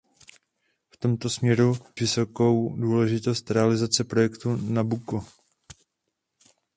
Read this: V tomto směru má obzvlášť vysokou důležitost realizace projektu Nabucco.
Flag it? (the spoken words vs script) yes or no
yes